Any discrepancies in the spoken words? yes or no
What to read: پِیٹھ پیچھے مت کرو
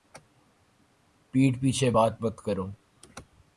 yes